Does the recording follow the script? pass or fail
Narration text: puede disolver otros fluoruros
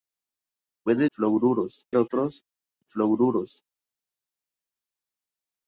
fail